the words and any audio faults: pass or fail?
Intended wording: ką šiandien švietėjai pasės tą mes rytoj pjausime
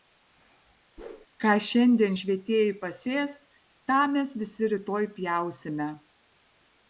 fail